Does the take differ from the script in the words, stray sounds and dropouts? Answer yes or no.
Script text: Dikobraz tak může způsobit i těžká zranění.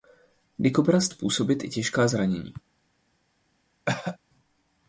yes